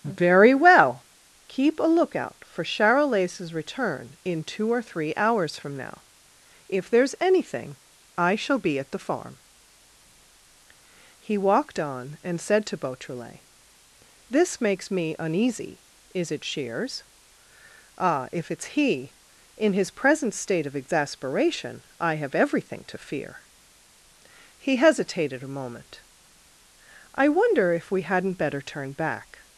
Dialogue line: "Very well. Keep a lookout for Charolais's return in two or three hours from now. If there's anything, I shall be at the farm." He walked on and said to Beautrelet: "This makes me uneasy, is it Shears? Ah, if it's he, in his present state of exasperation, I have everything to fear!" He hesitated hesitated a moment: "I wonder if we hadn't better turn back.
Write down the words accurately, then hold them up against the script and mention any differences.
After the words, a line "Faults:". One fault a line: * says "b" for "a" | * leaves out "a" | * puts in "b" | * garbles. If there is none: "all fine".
"Very well. Keep a lookout for Charolais's return in two or three hours from now. If there's anything, I shall be at the farm." He walked on and said to Beautrelet: "This makes me uneasy, is it Shears? Ah, if it's he, in his present state of exasperation, I have everything to fear!" He hesitated a moment: "I wonder if we hadn't better turn back.
Faults:
* leaves out "hesitated"